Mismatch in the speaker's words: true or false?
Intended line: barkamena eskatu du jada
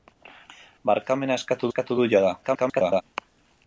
true